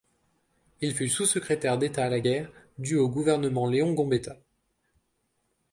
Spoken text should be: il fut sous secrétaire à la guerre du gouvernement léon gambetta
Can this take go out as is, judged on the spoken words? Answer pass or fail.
fail